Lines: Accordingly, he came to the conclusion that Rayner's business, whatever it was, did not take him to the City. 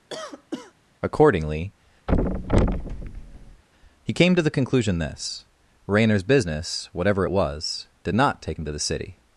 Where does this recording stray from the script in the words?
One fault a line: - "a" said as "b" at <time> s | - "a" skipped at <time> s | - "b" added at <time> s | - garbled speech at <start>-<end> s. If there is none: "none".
- "that" said as "this" at 5.0 s